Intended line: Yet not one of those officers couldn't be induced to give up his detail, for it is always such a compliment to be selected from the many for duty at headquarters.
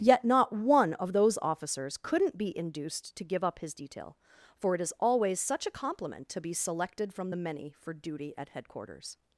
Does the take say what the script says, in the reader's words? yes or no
yes